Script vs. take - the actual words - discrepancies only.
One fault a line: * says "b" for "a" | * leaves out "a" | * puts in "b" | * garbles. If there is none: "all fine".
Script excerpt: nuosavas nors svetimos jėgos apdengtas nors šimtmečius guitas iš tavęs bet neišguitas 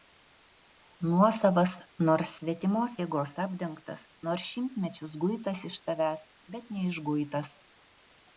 all fine